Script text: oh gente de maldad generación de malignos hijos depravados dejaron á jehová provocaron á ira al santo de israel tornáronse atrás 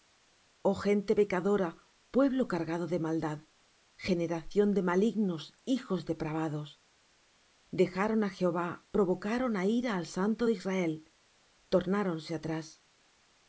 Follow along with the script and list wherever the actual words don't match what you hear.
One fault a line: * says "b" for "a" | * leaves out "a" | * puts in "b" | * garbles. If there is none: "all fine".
* puts in "pecadora pueblo cargado"